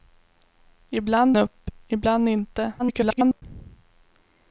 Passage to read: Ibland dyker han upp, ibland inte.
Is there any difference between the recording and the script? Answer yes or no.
yes